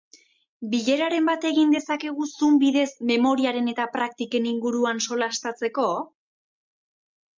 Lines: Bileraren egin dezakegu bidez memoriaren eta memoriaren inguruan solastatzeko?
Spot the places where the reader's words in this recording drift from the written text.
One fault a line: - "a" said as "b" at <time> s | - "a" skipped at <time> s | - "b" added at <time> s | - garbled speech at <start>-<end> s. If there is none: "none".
- "bat" added at 1.3 s
- "zoom" added at 2.3 s
- "memoriaren" said as "praktiken" at 4.0 s